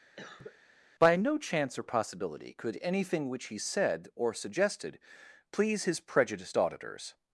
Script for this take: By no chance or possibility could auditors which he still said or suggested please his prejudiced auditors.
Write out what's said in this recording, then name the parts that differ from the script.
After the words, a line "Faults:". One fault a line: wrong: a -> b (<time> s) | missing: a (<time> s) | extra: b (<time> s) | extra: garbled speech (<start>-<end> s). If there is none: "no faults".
By no chance or possibility could anything which he said or suggested please his prejudiced auditors.
Faults:
wrong: auditors -> anything (2.8 s)
missing: still (3.6 s)